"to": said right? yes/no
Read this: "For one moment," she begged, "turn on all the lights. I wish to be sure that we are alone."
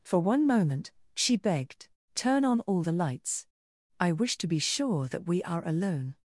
yes